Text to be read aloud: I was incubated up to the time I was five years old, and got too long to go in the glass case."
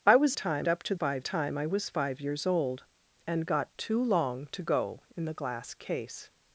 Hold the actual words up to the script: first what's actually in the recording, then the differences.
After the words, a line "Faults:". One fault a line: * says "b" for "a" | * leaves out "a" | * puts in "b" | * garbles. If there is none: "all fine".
I was time up to five time I was five years old, and got too long to go in the glass case."
Faults:
* says "time" for "incubated"
* says "five" for "the"